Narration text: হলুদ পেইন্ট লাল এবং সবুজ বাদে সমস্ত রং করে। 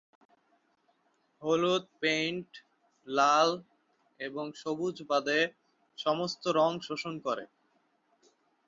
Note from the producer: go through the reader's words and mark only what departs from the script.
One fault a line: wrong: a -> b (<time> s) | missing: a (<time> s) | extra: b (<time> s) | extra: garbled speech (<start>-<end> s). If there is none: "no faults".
extra: শোষণ (6.9 s)